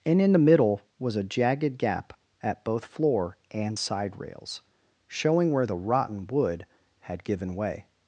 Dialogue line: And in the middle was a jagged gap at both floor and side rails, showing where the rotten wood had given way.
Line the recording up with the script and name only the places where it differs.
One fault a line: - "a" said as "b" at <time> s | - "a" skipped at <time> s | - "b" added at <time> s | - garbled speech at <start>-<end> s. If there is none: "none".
none